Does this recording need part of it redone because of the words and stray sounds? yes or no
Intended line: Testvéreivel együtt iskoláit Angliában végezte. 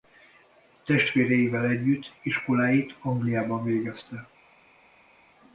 no